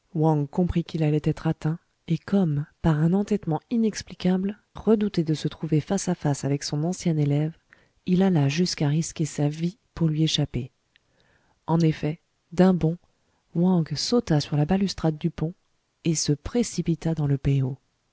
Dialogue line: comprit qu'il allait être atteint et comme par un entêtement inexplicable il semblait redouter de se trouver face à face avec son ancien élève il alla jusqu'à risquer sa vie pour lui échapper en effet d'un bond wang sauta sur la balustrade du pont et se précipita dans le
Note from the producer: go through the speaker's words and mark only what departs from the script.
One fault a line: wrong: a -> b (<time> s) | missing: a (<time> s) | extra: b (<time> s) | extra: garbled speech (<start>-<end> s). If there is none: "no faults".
missing: il semblait (4.6 s)